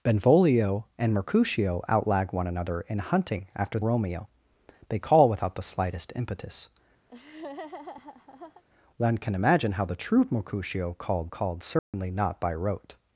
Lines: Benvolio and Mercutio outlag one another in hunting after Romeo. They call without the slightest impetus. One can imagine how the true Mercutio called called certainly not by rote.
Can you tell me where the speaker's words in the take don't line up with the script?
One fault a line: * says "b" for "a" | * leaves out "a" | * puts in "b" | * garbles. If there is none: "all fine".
all fine